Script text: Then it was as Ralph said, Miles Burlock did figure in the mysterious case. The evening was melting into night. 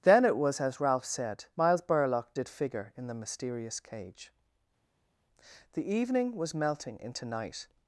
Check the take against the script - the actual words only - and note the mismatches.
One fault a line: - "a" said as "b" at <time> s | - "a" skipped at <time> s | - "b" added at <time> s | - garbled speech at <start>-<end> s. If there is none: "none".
- "case" said as "cage" at 3.8 s